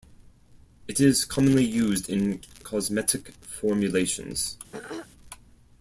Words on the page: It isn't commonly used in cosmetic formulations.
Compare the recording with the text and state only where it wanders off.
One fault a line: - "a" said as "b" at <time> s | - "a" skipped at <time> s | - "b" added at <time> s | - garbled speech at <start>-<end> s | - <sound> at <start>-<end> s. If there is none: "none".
- "isn't" said as "is" at 1.0 s
- throat clearing at 4.7-5.1 s